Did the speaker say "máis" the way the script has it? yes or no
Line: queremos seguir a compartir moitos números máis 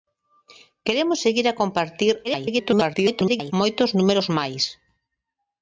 yes